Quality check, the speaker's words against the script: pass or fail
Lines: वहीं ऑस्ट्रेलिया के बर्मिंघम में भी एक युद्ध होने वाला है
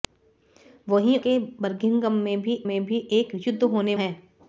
fail